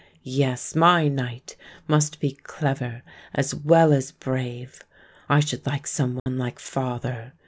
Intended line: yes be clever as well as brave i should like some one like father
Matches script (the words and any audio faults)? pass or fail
fail